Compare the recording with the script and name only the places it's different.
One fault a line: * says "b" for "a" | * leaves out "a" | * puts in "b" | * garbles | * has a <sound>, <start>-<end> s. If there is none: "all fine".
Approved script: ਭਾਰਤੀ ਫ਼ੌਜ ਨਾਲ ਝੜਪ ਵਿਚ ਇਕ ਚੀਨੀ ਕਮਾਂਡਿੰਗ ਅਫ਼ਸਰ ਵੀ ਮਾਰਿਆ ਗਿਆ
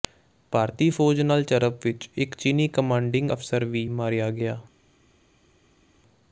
all fine